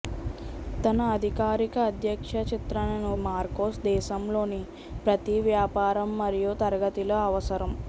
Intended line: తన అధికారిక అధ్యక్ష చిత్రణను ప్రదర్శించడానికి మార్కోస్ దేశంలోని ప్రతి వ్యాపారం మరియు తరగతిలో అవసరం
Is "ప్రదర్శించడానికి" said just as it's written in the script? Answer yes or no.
no